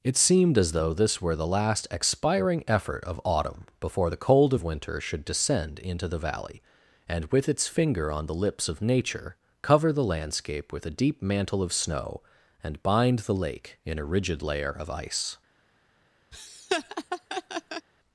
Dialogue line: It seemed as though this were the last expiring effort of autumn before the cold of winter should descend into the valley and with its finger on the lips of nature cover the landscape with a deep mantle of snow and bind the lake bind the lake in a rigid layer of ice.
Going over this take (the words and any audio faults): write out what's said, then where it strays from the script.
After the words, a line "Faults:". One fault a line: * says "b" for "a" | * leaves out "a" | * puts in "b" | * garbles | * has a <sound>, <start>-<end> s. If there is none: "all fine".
It seemed as though this were the last expiring effort of autumn before the cold of winter should descend into the valley and with its finger on the lips of nature cover the landscape with a deep mantle of snow and bind the lake in a rigid layer of ice.
Faults:
* leaves out "bind the lake"
* has a laugh, 16.3-17.9 s